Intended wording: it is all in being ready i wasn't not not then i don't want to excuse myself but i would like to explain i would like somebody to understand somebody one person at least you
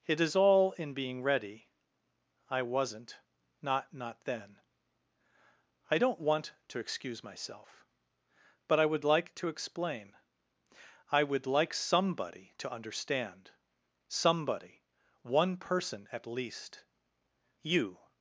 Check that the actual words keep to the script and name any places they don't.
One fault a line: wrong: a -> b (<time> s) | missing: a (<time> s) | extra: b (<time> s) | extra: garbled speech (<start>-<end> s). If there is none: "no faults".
no faults